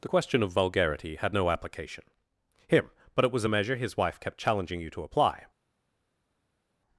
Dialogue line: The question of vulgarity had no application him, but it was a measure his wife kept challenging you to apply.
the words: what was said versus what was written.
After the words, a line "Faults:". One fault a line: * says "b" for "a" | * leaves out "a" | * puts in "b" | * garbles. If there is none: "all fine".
The question of vulgarity had no application him, but it was a measure his wife kept challenging you to apply.
Faults:
all fine